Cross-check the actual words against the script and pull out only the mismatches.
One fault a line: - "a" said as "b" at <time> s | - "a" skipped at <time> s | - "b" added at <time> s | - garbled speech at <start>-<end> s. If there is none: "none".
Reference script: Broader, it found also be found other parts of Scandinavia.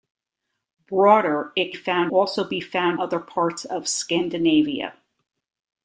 none